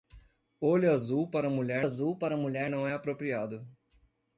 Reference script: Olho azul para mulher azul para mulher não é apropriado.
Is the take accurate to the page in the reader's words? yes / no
yes